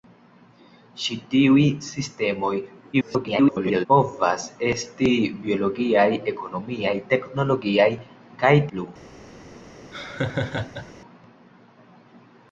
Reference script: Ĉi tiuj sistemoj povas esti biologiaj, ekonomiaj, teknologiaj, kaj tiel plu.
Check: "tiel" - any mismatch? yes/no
yes